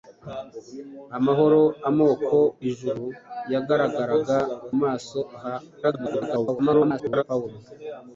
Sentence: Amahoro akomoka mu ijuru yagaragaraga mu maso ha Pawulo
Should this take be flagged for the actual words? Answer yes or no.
yes